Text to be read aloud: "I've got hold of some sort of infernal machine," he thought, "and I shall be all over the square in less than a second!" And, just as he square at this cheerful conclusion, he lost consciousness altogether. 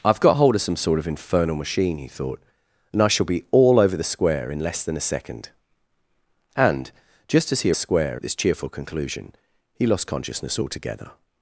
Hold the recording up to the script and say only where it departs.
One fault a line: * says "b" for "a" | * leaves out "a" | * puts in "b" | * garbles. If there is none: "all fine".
all fine